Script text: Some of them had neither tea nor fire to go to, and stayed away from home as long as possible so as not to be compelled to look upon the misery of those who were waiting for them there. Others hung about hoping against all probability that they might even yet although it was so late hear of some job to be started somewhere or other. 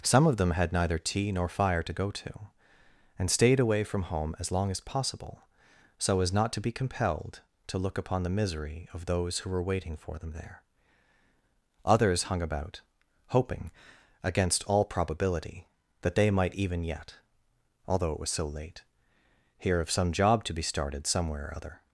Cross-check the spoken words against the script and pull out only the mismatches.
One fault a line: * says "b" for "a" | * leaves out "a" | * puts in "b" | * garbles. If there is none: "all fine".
all fine